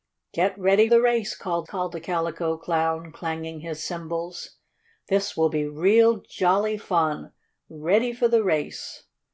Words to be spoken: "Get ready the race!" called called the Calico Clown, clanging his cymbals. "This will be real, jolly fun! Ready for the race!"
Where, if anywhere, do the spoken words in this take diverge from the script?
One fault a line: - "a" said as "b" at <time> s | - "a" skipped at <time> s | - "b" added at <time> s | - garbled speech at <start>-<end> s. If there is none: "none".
none